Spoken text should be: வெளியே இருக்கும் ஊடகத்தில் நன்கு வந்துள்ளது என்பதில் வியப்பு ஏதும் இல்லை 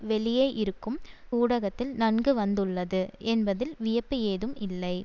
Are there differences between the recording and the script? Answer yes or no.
no